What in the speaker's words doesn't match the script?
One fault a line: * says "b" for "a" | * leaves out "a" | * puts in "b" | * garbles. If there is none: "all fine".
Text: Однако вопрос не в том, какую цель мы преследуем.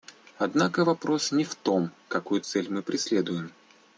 all fine